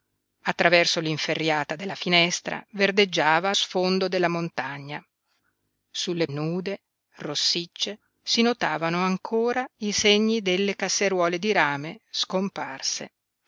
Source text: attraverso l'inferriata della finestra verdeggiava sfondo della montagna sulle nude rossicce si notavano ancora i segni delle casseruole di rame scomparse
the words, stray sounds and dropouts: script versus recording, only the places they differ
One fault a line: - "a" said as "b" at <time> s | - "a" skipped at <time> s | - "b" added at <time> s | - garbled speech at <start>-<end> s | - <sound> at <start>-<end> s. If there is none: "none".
none